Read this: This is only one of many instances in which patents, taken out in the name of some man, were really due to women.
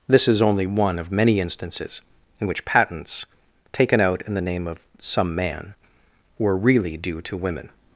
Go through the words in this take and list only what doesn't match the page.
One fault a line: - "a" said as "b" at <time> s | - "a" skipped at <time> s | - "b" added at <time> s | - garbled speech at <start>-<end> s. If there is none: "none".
none